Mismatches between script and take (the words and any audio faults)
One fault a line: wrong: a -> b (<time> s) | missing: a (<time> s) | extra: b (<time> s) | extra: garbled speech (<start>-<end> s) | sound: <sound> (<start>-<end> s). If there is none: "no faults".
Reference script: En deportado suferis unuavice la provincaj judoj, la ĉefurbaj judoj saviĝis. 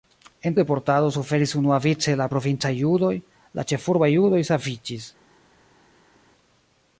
no faults